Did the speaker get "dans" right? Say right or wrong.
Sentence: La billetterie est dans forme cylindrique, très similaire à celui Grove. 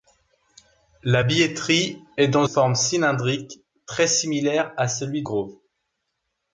right